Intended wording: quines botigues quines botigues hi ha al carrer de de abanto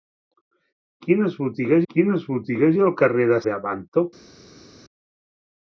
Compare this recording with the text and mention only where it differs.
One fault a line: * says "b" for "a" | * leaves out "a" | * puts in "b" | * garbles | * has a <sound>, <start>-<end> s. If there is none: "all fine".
all fine